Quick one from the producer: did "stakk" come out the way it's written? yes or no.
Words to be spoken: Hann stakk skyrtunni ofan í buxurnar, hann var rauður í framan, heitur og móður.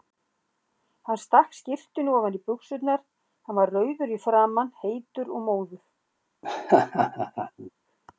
yes